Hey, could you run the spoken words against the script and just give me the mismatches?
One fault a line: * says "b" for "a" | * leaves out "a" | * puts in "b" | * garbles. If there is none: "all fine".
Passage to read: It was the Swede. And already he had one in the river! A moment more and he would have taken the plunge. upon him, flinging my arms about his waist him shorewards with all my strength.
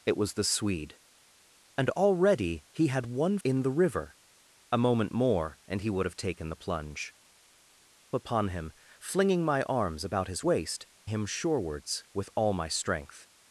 all fine